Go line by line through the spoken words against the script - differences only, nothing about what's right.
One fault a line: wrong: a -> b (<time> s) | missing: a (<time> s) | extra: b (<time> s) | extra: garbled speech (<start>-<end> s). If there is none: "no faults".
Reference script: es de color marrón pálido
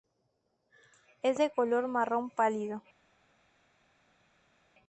no faults